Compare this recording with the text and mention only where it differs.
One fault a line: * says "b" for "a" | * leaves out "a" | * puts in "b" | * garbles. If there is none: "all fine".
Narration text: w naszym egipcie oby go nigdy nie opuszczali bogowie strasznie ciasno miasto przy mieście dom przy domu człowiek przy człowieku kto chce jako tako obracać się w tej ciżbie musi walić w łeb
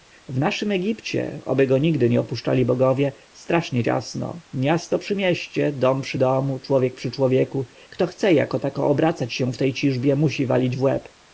all fine